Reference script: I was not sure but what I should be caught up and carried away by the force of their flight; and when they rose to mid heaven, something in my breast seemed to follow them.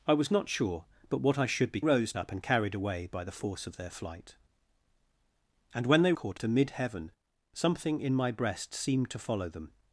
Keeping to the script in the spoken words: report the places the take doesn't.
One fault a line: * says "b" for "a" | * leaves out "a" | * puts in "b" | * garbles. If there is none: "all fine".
* says "rose" for "caught"
* says "caught" for "rose"